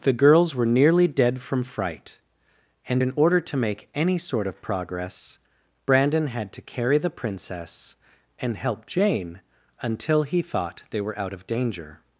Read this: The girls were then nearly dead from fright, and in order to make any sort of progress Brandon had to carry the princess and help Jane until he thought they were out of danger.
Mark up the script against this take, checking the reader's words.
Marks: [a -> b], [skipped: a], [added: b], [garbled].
The girls were [skipped: then] nearly dead from fright, and in order to make any sort of progress Brandon had to carry the princess and help Jane until he thought they were out of danger.